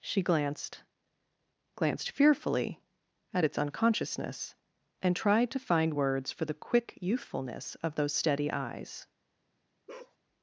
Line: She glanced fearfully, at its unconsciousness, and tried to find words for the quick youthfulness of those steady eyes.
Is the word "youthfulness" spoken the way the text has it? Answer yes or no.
yes